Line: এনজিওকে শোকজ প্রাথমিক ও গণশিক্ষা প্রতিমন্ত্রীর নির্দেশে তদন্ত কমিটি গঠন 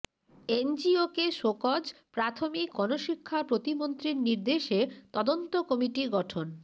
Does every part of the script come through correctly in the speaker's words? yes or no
no